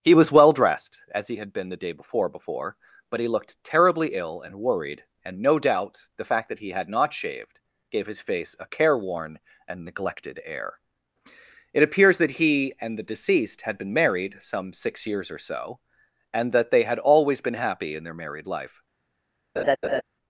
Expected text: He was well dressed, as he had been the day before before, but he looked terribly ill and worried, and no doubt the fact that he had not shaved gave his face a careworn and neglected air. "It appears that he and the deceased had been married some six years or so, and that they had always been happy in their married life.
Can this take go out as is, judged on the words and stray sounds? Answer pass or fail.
fail